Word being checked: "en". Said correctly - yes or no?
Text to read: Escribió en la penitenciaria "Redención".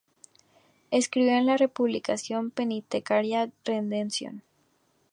yes